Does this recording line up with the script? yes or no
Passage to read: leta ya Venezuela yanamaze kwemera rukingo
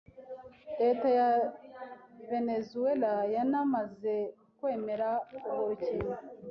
no